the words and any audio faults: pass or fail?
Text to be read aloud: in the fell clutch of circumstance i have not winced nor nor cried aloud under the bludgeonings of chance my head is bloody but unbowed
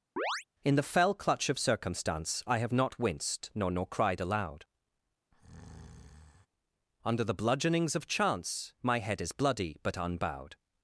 fail